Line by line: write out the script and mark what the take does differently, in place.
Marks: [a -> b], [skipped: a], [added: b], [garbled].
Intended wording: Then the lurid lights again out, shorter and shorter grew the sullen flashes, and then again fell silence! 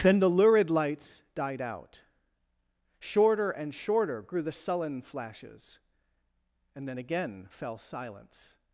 Then the lurid lights [again -> died] out, shorter and shorter grew the sullen flashes, and then again fell silence!